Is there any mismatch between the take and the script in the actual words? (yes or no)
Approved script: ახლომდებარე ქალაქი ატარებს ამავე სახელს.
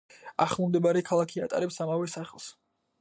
no